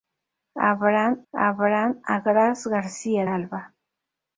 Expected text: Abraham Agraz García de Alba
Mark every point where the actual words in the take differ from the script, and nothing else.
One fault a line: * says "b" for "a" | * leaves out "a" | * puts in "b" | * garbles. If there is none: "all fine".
* puts in "abraham"
* leaves out "de"